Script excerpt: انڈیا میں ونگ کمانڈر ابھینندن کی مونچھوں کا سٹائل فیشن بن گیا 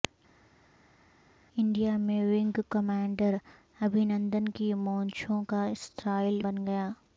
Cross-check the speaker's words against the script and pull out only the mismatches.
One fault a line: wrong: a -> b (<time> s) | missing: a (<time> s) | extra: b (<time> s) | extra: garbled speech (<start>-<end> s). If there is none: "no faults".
missing: فیشن (6.4 s)